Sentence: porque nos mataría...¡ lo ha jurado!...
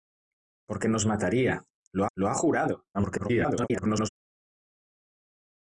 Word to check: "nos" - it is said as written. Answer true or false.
true